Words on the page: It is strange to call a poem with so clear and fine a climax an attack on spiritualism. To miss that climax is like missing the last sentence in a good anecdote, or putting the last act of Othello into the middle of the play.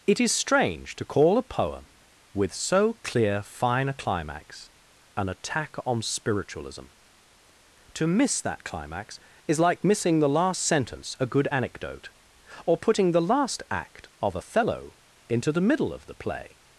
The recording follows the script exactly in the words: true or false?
false